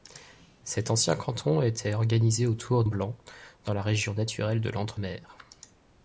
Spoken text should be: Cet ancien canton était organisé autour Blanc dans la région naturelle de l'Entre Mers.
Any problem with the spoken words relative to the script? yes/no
no